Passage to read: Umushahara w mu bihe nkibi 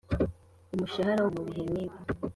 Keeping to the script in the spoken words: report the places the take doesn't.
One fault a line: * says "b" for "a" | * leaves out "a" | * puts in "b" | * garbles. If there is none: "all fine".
all fine